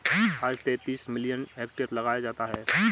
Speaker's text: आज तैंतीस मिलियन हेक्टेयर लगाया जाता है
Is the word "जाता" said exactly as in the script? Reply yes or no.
yes